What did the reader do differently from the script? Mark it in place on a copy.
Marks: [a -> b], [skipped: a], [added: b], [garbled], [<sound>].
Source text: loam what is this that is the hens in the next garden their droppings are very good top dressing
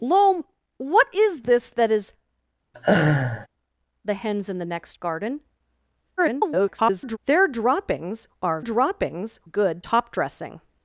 loam what is this that is [laugh] the hens in the next garden [garbled] their droppings are [very -> droppings] good top dressing